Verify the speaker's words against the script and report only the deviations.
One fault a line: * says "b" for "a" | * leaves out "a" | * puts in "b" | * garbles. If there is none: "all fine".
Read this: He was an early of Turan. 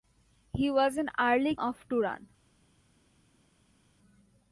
all fine